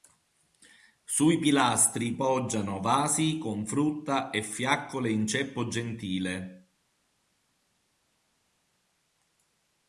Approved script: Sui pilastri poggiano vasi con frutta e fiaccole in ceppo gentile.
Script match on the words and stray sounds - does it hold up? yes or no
yes